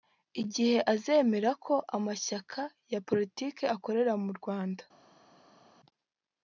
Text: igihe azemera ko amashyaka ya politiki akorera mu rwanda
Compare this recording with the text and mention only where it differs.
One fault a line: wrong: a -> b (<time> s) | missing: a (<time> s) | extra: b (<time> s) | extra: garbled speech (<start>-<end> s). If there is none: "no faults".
no faults